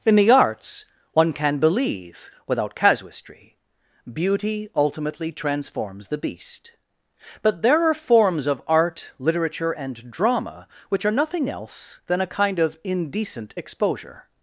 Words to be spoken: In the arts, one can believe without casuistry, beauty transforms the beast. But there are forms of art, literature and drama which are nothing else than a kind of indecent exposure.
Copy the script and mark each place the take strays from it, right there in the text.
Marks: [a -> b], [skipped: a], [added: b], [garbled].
In the arts, one can believe without casuistry, beauty [added: ultimately] transforms the beast. But there are forms of art, literature and drama which are nothing else than a kind of indecent exposure.